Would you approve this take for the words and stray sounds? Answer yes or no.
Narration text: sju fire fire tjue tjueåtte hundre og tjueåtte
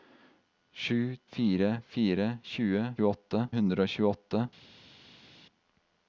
yes